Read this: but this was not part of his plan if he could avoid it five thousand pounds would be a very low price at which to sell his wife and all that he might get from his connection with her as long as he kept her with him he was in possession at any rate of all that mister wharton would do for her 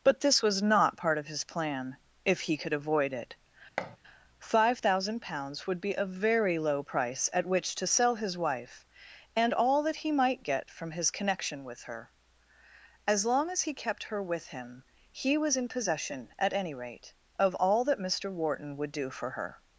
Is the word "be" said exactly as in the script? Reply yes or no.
yes